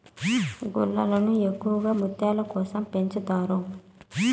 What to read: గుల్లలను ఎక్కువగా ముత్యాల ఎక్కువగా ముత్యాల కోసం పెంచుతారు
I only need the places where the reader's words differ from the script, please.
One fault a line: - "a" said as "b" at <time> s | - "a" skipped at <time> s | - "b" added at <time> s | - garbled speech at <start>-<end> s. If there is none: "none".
- "ఎక్కువగా ముత్యాల" skipped at 2.4 s